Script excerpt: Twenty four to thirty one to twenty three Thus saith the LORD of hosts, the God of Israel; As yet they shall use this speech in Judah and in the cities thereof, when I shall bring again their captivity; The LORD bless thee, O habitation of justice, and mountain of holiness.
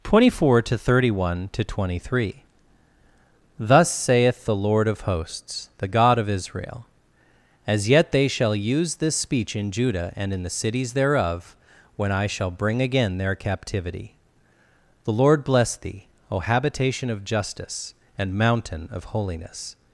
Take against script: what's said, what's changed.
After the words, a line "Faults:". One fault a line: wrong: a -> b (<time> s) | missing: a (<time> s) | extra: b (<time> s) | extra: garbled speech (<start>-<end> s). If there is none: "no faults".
Twenty four to thirty one to twenty three Thus saith the LORD of hosts, the God of Israel; As yet they shall use this speech in Judah and in the cities thereof, when I shall bring again their captivity; The LORD bless thee, O habitation of justice, and mountain of holiness.
Faults:
no faults